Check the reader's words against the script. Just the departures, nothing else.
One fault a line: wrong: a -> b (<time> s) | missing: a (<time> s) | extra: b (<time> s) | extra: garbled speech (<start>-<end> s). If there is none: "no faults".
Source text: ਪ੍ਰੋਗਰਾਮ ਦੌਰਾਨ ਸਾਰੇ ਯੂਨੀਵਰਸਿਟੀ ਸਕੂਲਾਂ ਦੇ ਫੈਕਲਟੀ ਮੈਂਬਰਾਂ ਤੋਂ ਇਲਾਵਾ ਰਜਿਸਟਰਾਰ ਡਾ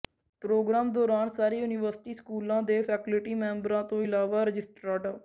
no faults